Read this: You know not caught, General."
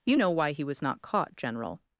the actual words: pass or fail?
fail